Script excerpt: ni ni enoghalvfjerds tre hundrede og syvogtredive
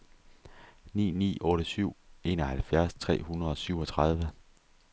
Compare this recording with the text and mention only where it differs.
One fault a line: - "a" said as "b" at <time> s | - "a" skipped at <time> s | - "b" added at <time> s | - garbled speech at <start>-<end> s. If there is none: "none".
- "otte syv" added at 1.4 s